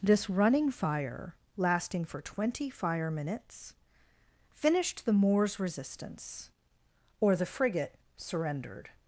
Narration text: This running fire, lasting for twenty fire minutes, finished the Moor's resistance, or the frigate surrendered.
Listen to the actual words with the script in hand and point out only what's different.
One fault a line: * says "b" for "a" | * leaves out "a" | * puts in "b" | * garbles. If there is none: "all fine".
all fine